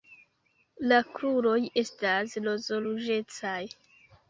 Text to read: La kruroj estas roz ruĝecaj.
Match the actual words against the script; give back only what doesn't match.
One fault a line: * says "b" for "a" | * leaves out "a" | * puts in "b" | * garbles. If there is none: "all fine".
all fine